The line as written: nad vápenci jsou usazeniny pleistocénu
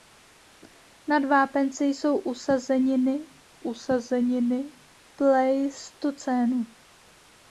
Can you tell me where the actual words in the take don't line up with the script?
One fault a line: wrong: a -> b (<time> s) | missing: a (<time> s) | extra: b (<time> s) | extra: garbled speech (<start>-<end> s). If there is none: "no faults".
extra: usazeniny (3.6 s)